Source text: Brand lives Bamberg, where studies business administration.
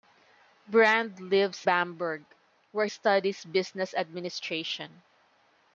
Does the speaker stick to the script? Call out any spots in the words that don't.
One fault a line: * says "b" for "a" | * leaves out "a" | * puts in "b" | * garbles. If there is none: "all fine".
all fine